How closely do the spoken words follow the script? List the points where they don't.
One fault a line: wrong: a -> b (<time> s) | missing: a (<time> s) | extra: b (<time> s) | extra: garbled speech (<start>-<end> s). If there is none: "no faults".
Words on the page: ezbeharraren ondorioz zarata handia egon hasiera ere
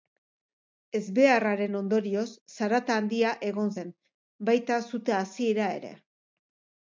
extra: zen baita sute (3.8 s)